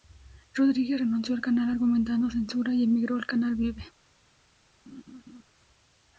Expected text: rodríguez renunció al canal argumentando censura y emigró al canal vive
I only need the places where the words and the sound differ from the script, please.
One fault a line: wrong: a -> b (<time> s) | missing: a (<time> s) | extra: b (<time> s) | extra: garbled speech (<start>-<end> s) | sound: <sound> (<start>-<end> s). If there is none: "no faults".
sound: laugh (4.9-5.4 s)